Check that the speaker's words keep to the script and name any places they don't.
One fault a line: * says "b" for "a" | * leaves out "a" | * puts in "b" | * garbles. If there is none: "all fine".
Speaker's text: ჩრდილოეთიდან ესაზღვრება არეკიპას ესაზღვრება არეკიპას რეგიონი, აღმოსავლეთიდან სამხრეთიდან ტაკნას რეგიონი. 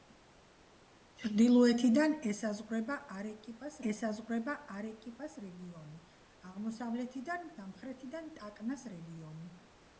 all fine